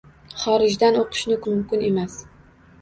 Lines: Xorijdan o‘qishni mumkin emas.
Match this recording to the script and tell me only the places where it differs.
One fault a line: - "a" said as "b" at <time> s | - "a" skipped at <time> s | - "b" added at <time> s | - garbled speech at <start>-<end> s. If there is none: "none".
none